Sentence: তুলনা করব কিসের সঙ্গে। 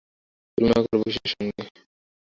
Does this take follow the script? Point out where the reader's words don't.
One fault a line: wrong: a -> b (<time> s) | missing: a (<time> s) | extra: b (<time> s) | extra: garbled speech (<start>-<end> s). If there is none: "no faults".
no faults